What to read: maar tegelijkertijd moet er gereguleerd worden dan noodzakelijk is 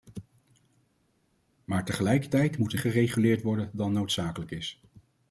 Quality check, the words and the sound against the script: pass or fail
pass